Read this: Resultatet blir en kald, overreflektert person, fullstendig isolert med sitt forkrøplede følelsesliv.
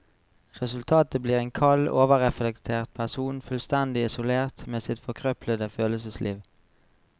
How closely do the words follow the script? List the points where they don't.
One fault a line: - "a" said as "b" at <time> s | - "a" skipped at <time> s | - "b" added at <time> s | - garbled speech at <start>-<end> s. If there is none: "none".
none